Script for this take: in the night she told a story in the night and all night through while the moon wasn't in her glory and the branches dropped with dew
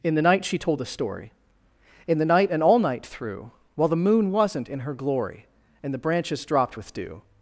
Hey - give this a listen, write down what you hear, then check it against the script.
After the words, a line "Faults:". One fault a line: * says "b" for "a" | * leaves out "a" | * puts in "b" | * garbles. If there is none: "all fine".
in the night she told a story in the night and all night through while the moon wasn't in her glory and the branches dropped with dew
Faults:
all fine